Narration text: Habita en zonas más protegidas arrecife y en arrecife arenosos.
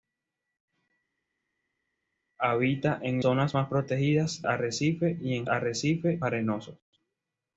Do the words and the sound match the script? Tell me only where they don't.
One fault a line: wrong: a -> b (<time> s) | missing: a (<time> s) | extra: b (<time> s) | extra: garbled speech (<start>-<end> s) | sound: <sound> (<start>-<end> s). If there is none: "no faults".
no faults